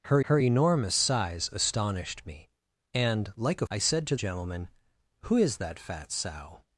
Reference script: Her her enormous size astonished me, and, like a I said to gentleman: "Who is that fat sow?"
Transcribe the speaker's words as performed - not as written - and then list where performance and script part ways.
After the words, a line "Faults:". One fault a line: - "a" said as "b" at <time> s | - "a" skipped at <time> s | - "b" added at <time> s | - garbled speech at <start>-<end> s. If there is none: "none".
Her her enormous size astonished me, and, like a I said to gentleman: "Who is that fat sow?"
Faults:
none